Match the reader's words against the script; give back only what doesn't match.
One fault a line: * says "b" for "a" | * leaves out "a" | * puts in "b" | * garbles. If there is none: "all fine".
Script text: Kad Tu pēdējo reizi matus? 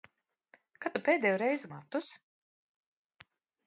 all fine